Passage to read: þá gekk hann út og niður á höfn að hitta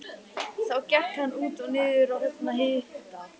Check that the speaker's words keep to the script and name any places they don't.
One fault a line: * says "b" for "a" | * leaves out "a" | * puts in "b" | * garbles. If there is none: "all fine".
all fine